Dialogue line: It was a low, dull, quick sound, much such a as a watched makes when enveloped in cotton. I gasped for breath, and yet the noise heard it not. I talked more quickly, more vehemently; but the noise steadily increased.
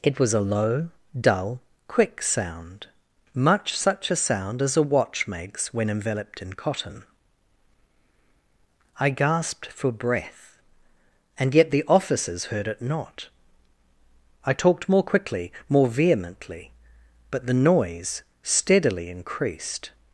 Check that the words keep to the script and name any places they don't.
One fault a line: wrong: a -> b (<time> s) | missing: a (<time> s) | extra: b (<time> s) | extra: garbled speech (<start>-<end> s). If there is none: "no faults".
extra: sound (4.2 s)
wrong: watched -> watch (4.8 s)
wrong: noise -> officers (11.9 s)